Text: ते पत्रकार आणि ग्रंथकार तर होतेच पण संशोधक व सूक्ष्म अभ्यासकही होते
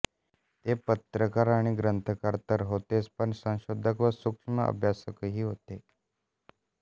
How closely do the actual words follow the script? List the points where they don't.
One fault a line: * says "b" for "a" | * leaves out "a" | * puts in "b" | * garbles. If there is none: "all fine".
all fine